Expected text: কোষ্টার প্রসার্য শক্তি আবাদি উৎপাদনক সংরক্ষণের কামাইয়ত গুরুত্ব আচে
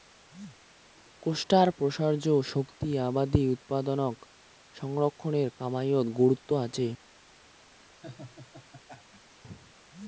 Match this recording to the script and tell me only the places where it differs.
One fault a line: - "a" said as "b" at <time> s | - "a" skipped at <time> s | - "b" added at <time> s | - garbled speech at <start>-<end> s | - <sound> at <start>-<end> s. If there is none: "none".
- laugh at 8.0-9.4 s